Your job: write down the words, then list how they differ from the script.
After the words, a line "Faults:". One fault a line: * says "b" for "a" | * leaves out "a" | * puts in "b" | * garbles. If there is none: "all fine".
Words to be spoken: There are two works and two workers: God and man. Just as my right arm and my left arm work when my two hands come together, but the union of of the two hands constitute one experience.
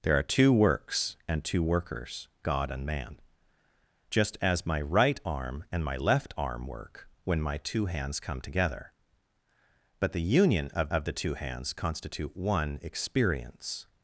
There are two works and two workers: God and man. Just as my right arm and my left arm work when my two hands come together, but the union of of the two hands constitute one experience.
Faults:
all fine